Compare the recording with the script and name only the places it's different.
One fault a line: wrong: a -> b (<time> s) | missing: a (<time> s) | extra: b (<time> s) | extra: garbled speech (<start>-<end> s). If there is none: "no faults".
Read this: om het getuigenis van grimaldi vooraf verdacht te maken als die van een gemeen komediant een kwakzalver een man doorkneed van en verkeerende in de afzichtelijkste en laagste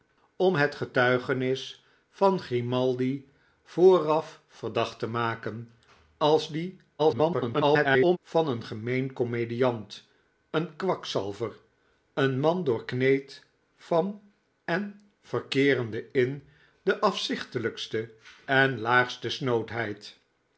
extra: garbled speech (7.0-8.2 s)